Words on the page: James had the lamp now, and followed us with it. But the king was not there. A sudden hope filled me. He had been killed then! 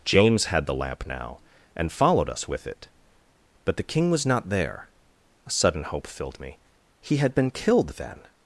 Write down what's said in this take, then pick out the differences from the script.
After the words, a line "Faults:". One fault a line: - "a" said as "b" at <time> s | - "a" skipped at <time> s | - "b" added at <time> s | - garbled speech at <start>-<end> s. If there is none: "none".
James had the lamp now, and followed us with it. But the king was not there. A sudden hope filled me. He had been killed then!
Faults:
none